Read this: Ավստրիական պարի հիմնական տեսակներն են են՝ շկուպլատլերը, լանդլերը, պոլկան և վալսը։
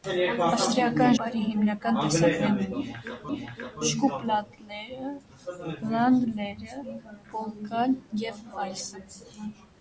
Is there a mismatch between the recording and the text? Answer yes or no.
no